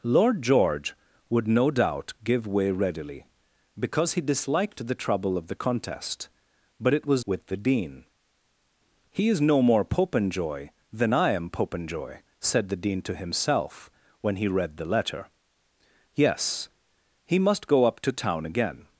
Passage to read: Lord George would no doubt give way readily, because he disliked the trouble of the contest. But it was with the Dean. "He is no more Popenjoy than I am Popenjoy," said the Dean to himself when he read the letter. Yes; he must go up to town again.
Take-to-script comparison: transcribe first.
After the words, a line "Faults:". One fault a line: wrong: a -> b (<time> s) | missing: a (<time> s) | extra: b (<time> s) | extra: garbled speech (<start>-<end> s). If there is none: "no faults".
Lord George would no doubt give way readily, because he disliked the trouble of the contest. But it was with the Dean. "He is no more Popenjoy than I am Popenjoy," said the Dean to himself when he read the letter. Yes; he must go up to town again.
Faults:
no faults